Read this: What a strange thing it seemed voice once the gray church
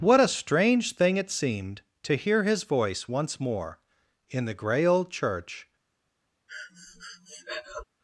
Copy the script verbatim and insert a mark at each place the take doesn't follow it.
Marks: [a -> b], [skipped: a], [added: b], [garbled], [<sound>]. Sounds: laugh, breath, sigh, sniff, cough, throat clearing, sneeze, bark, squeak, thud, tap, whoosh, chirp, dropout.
What a strange thing it seemed [added: to hear his] voice once [added: more in] the gray [added: old] church [breath]